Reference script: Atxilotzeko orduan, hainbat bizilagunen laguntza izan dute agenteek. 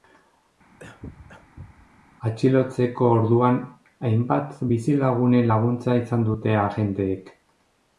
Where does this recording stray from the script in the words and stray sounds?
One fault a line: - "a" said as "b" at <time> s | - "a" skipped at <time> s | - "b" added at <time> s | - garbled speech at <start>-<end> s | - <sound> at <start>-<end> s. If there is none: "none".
- cough at 0.8-1.9 s